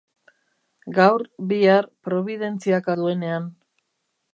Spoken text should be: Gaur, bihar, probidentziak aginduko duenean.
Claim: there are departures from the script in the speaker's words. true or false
true